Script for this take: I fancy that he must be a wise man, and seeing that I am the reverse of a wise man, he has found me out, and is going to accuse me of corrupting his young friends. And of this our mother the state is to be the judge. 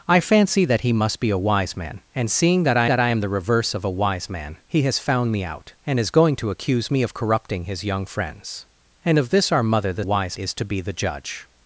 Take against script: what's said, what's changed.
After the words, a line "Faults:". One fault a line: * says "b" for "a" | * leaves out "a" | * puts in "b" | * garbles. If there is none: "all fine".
I fancy that he must be a wise man, and seeing that I that I am the reverse of a wise man, he has found me out, and is going to accuse me of corrupting his young friends. And of this our mother the wise is to be the judge.
Faults:
* puts in "that I"
* says "wise" for "state"